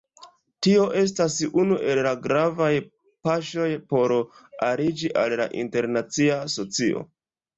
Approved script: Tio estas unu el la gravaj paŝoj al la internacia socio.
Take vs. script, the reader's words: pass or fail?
fail